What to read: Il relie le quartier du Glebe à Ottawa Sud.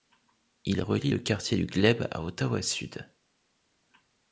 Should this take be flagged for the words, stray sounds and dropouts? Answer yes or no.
no